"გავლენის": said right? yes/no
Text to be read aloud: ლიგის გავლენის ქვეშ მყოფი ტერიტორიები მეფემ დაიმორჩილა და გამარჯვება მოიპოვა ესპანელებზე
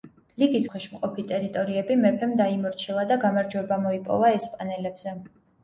no